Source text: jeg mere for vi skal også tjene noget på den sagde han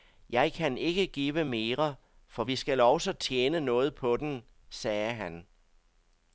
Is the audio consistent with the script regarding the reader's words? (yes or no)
no